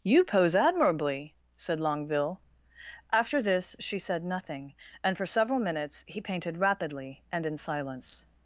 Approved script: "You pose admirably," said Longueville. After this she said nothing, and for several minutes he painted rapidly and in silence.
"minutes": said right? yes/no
yes